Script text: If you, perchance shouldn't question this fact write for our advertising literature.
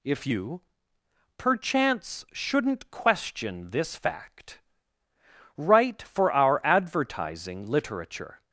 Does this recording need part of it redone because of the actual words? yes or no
no